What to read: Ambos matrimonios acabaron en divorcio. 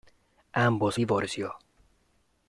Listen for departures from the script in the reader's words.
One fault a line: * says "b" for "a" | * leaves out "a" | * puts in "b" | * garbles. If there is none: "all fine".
* leaves out "matrimonios acabaron en"